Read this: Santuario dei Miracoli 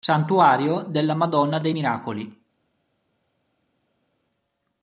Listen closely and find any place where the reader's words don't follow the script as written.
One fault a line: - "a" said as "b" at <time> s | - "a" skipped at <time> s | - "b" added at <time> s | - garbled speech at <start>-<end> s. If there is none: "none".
- "della Madonna" added at 0.9 s